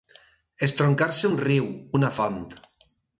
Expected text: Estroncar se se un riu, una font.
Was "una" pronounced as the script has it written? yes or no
yes